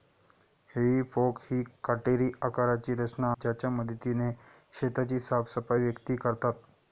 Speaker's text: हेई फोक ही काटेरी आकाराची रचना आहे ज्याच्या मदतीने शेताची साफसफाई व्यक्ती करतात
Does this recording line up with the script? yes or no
no